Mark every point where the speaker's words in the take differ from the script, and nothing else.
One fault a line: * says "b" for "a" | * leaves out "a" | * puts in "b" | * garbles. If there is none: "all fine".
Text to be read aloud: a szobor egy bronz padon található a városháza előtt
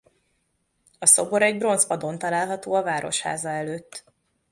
all fine